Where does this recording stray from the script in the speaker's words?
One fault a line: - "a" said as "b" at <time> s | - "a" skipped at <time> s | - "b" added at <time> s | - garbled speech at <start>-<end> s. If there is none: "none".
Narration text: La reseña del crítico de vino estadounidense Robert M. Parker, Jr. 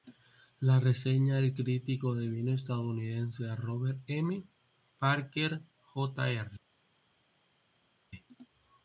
none